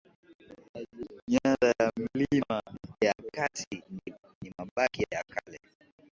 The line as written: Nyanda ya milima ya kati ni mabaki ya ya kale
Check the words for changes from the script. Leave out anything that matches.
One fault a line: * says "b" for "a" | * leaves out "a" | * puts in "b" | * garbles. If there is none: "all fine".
all fine